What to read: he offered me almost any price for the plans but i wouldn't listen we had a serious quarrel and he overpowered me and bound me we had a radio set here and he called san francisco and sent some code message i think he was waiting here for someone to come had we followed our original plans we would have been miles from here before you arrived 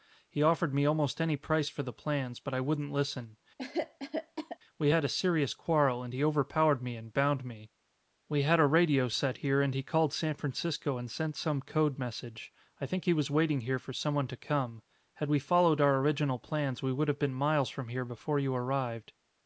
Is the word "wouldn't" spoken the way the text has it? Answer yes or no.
yes